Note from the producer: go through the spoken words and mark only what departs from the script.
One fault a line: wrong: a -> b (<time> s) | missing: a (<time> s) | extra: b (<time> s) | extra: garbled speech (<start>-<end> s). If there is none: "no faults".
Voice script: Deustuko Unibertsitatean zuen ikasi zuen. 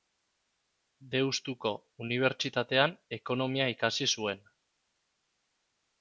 wrong: zuen -> ekonomia (3.2 s)